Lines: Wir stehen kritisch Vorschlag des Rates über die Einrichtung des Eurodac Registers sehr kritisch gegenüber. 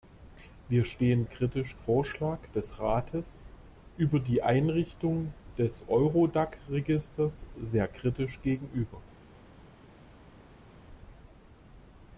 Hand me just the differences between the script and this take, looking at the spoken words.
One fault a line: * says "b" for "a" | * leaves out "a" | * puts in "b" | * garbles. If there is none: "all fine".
all fine